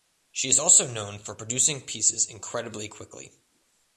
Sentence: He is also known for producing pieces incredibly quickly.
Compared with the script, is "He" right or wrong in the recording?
wrong